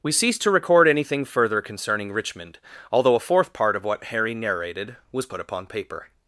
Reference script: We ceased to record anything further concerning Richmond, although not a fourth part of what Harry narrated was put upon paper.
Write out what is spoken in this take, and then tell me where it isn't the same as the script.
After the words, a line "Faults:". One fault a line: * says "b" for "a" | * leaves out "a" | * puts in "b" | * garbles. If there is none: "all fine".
We ceased to record anything further concerning Richmond, although a fourth part of what Harry narrated was put upon paper.
Faults:
* leaves out "not"